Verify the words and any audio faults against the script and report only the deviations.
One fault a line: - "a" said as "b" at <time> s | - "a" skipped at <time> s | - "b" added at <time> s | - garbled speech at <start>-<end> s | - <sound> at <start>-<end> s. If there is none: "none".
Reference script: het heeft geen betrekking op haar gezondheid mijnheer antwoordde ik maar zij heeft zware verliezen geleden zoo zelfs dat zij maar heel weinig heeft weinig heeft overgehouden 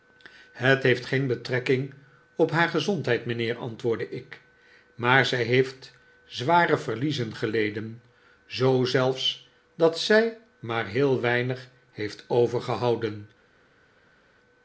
- "weinig heeft" skipped at 12.2 s